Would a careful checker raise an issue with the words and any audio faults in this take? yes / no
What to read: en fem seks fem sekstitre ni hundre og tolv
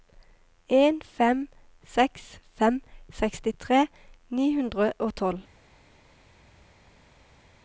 no